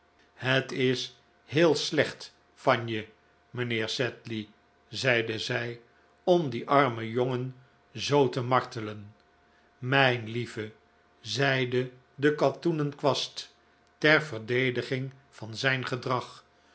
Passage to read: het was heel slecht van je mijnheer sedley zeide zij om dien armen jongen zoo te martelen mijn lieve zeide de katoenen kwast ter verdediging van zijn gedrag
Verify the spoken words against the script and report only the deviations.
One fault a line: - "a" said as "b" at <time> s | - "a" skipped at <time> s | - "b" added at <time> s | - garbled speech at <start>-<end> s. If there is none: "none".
- "was" said as "is" at 0.7 s